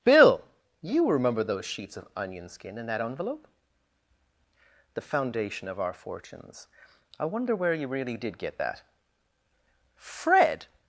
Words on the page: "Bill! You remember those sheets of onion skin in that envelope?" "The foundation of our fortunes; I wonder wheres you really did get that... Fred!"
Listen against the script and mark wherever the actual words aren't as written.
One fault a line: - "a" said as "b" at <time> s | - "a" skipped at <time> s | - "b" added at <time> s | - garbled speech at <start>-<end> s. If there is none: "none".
- "wheres" said as "where" at 7.5 s